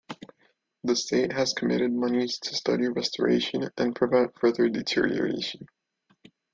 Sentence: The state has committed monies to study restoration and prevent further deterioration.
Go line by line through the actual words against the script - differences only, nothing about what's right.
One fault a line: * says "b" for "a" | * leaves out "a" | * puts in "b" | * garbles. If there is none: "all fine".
all fine